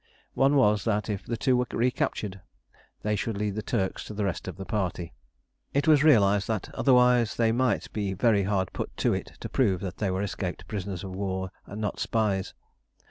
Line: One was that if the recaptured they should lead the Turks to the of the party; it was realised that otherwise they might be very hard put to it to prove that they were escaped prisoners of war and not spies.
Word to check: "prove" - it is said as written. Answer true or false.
true